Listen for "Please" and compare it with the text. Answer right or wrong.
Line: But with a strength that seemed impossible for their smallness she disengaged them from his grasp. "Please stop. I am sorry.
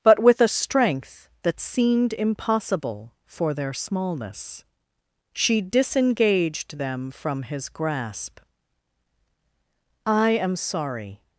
wrong